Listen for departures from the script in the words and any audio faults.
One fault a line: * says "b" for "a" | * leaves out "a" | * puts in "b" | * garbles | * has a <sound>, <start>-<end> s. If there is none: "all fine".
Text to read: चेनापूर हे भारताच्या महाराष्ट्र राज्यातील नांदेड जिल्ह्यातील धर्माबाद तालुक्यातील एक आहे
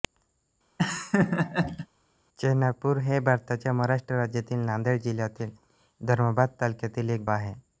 * has a laugh, 0.8-1.9 s